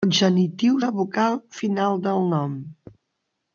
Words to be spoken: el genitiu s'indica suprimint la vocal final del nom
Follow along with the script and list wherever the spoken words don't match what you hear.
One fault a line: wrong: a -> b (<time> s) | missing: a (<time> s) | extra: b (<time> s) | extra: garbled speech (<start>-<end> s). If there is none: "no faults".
missing: s'indica suprimint (0.8 s)